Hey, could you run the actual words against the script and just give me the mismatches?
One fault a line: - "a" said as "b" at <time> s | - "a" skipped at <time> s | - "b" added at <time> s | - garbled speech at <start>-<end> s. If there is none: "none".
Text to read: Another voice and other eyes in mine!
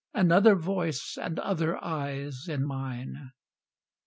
none